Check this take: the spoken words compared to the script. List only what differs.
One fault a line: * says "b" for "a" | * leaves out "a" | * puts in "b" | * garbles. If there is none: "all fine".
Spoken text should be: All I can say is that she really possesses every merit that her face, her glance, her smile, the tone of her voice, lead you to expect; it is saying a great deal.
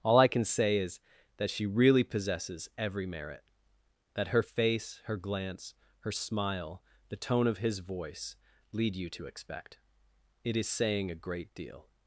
* says "his" for "her"